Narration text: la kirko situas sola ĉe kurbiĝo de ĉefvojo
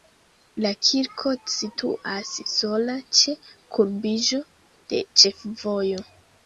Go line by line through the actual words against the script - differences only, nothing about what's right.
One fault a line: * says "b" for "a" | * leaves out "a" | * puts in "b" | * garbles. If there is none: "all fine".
all fine